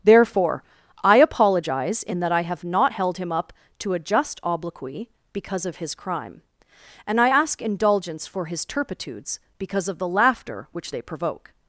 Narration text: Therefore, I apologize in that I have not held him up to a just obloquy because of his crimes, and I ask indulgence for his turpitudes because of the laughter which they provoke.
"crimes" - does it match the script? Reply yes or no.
no